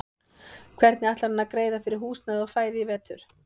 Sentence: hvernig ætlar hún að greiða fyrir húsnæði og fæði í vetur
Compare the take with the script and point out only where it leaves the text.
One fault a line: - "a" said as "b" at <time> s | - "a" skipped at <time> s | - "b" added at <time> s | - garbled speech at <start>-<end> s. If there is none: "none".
- "hún" said as "hann" at 1.3 s